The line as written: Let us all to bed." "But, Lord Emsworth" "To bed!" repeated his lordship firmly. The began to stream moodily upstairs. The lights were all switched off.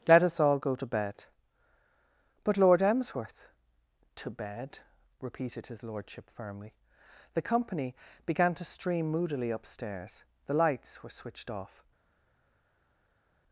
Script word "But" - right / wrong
right